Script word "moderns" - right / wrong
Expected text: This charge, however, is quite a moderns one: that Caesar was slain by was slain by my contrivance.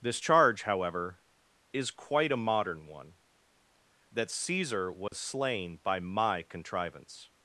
wrong